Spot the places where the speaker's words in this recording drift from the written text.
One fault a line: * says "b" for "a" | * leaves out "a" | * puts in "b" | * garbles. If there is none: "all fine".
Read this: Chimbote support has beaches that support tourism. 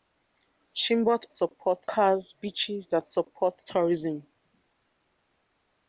all fine